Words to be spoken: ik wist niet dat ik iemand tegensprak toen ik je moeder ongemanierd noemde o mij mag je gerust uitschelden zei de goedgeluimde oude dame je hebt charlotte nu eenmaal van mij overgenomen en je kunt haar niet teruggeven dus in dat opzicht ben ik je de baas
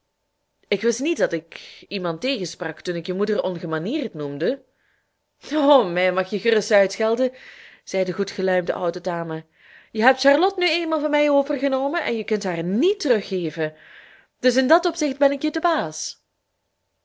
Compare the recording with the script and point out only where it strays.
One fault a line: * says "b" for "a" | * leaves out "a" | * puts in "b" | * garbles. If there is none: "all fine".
all fine